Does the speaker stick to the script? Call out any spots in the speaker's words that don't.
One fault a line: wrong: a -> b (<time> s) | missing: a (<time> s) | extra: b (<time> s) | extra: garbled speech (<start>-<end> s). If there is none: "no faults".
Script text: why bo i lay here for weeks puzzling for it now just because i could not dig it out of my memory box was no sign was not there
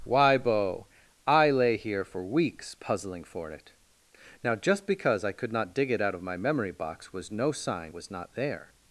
no faults